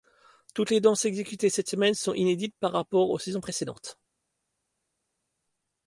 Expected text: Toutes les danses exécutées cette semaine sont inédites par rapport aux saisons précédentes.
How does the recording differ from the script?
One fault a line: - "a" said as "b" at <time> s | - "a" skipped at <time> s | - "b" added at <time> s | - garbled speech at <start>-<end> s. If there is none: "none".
none